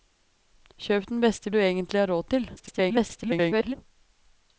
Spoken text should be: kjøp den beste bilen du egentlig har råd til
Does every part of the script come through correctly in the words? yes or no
no